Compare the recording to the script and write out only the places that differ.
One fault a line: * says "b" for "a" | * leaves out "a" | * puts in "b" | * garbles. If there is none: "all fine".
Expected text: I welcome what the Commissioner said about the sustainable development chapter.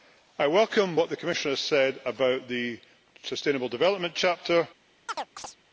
all fine